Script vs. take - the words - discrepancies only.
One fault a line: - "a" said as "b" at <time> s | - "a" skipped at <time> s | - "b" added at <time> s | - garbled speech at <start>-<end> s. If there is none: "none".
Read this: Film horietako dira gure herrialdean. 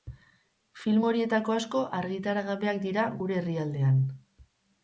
- "asko argitaragabeak" added at 1.6 s